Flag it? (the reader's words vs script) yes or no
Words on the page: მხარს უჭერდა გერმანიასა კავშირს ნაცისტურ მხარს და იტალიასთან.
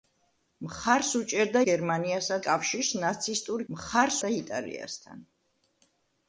no